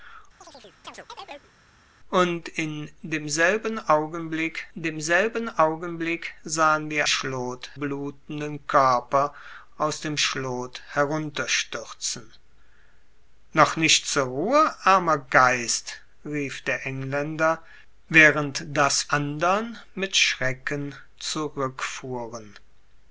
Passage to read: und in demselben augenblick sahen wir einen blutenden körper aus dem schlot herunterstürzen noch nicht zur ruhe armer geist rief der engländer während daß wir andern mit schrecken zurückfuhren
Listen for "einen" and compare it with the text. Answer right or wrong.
wrong